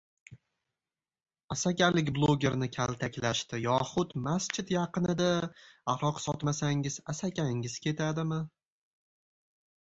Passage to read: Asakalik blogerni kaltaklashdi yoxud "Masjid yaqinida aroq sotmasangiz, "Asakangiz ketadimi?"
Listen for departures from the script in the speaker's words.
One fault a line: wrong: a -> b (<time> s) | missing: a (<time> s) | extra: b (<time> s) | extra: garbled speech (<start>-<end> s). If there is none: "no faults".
no faults